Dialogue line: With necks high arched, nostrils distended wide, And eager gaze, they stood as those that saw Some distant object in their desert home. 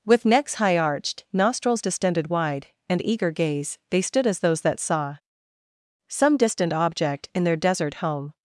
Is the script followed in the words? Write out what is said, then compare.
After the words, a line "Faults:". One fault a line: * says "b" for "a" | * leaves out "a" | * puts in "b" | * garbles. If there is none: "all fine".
With necks high arched, nostrils distended wide, And eager gaze, they stood as those that saw Some distant object in their desert home.
Faults:
all fine